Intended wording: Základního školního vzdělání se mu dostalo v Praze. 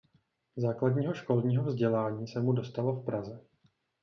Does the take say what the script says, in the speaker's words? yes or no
yes